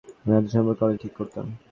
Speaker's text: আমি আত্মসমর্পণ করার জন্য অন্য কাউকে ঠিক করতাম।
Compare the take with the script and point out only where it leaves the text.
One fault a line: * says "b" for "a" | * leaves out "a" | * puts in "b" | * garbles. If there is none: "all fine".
* leaves out "জন্য অন্য কাউকে"